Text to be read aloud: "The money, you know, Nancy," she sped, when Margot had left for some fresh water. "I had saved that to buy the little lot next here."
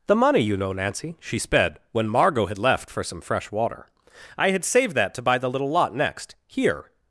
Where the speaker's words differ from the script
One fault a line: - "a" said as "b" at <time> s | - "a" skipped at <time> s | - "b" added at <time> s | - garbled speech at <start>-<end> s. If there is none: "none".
none